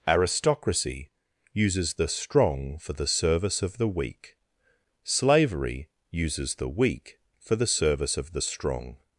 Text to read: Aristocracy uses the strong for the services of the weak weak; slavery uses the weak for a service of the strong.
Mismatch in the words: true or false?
true